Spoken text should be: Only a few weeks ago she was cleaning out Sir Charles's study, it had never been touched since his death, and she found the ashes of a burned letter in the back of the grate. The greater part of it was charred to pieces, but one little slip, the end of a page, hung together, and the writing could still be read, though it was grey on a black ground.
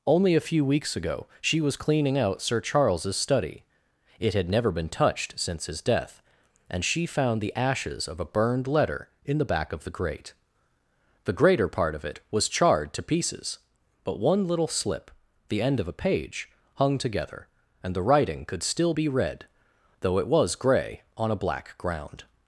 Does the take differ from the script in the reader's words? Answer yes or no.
no